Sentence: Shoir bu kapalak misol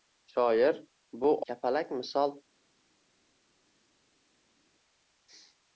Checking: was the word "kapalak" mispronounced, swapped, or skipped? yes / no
no